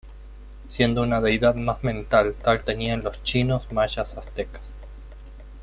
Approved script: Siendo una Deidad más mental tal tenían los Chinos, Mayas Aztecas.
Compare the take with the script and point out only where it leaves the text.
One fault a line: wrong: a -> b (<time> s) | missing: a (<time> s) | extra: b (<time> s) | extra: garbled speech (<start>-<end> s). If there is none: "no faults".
no faults